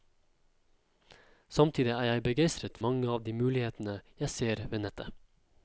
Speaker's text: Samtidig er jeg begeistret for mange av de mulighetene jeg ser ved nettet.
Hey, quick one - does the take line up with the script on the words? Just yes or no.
no